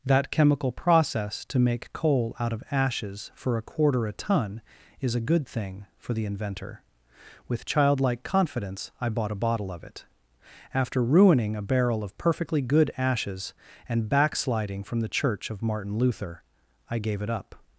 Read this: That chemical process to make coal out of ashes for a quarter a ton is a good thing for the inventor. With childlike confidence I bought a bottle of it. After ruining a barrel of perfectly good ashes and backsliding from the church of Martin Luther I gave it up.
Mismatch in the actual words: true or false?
false